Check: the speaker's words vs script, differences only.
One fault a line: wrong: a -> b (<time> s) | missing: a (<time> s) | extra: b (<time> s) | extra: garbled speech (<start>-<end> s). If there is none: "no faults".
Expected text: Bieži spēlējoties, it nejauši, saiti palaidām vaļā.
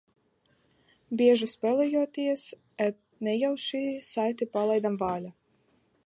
missing: it (2.5 s)